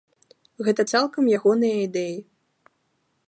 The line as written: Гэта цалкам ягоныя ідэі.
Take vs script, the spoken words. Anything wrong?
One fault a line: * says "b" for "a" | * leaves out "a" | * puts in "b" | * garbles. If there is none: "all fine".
all fine